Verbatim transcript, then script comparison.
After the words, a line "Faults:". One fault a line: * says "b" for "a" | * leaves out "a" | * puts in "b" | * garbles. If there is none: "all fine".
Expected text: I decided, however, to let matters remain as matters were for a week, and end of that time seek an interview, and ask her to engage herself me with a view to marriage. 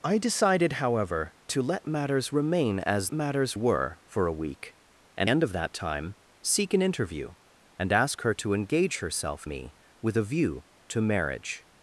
I decided, however, to let matters remain as matters were for a week, and end of that time seek an interview, and ask her to engage herself me with a view to marriage.
Faults:
all fine